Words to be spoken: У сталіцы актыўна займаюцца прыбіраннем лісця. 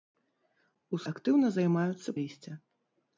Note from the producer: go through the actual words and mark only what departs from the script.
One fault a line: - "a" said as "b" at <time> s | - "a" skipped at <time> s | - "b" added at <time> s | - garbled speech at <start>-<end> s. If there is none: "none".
- "сталіцы" skipped at 1.0 s
- "прыбіраннем" skipped at 2.2 s